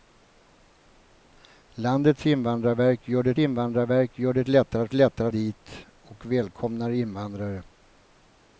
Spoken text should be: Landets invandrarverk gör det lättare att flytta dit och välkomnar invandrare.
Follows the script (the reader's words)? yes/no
no